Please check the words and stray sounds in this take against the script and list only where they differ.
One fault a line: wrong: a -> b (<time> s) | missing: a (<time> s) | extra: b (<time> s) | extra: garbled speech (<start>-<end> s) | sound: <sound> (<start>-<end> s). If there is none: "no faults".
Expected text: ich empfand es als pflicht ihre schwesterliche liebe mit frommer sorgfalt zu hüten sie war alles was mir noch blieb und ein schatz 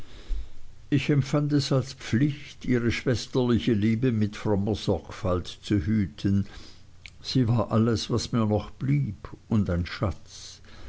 no faults